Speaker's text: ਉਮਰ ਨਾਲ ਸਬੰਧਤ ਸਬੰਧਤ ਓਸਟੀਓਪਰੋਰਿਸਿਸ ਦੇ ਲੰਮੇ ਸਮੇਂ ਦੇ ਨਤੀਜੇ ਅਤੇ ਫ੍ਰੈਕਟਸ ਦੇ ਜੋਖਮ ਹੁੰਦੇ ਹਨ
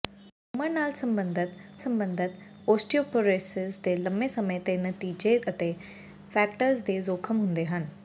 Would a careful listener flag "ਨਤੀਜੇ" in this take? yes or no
no